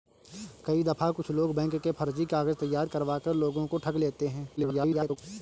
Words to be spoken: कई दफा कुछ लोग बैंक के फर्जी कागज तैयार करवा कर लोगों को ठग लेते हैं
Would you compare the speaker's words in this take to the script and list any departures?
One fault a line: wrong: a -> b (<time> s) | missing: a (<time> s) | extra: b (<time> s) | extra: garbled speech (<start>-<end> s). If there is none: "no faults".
extra: garbled speech (4.6-5.2 s)